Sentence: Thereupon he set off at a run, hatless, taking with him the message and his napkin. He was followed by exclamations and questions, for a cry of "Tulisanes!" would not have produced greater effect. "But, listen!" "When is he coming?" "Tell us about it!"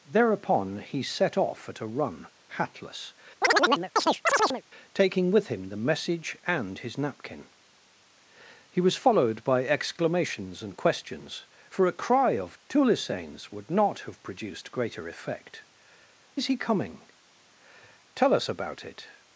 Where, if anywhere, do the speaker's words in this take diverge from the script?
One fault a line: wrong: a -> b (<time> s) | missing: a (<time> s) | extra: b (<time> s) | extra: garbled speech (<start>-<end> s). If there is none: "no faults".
missing: But listen When (15.6 s)